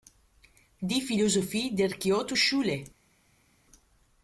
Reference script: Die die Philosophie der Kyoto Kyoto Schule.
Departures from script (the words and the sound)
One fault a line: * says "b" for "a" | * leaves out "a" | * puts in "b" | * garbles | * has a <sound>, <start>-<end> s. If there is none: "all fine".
* leaves out "die"
* leaves out "Kyoto"